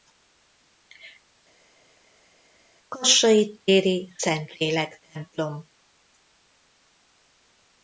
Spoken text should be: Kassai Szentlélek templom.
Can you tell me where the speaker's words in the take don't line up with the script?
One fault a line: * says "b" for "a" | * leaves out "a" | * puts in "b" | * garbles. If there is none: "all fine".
* puts in "téri"